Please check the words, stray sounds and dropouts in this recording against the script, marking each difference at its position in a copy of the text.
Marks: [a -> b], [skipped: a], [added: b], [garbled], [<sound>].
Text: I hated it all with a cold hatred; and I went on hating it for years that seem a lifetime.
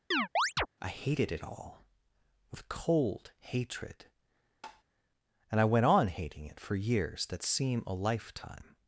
[chirp] I hated it all with [skipped: a] cold hatred; [tap] and I went on hating it for years that seem a lifetime.